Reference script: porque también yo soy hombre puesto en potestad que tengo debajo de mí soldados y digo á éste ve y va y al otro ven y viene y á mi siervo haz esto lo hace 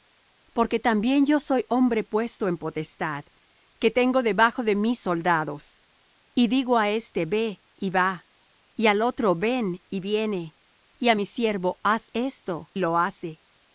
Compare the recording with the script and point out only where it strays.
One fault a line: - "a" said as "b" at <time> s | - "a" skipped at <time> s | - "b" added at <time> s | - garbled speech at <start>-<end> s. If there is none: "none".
none